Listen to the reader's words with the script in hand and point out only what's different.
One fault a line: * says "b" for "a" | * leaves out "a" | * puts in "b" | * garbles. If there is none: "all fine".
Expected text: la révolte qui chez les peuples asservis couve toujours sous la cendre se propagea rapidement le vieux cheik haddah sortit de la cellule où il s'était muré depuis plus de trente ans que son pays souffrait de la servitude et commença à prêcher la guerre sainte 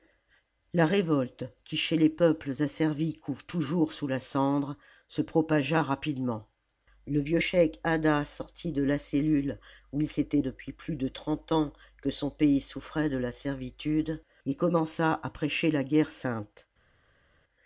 * leaves out "muré"